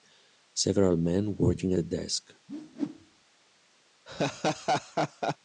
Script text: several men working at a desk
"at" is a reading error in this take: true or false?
true